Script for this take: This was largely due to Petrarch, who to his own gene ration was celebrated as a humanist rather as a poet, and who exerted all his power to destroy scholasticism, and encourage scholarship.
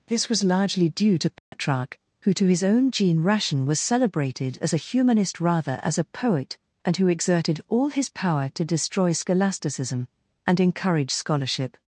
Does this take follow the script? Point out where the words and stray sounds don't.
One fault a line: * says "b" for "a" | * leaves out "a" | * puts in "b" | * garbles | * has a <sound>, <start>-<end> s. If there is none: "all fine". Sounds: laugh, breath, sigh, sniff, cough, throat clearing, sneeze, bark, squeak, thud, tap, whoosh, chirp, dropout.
* has a dropout, 1.4-1.5 s